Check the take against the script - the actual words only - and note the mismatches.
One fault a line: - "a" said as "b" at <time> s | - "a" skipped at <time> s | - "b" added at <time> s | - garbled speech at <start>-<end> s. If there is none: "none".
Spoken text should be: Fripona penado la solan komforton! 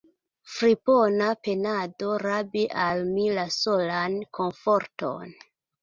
- "rabi al mi" added at 2.3 s